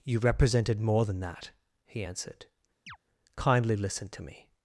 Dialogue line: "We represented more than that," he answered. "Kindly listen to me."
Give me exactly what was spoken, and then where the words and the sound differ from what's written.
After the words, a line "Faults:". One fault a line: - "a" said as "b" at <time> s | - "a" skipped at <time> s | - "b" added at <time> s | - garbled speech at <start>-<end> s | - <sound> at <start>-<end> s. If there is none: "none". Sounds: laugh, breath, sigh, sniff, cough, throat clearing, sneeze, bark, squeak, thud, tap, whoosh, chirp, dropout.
"You represented more than that," he answered. "Kindly listen to me."
Faults:
- "We" said as "You" at 0.0 s
- chirp at 2.9-3.0 s